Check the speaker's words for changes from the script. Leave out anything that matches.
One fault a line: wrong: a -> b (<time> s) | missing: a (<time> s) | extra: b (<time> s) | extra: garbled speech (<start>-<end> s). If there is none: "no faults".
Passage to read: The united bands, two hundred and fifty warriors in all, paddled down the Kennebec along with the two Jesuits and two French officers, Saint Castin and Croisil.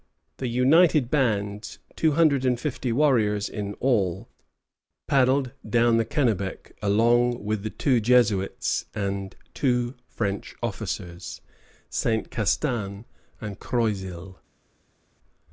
no faults